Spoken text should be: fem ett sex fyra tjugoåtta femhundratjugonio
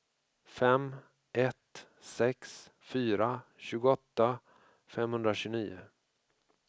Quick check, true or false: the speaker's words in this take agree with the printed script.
true